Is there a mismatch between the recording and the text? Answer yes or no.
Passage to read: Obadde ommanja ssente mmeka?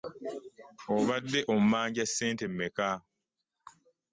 no